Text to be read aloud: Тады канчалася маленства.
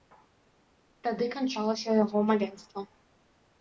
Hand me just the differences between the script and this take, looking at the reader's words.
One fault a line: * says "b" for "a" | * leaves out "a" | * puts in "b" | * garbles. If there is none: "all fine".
* puts in "яго"